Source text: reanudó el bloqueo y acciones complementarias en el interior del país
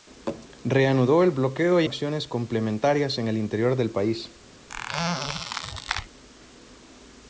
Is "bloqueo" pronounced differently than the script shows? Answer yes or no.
no